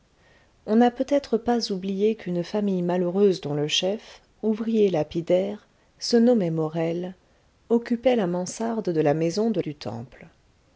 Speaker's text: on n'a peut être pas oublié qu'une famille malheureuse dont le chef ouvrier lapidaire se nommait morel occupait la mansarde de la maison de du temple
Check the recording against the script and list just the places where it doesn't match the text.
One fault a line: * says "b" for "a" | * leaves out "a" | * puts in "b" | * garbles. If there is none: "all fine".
all fine